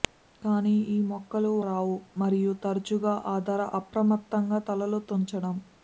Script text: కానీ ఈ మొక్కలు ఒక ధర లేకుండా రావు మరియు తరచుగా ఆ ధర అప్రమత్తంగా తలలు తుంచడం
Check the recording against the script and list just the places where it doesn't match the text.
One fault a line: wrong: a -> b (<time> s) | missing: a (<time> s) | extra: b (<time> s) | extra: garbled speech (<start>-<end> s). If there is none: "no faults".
missing: ఒక ధర లేకుండా (1.5 s)